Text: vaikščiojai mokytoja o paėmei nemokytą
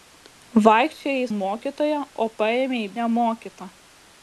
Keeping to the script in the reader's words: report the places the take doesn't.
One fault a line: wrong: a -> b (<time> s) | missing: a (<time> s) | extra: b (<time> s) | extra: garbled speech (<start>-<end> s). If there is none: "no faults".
no faults